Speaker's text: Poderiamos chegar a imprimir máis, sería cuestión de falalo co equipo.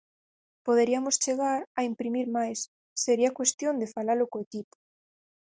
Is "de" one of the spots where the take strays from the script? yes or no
no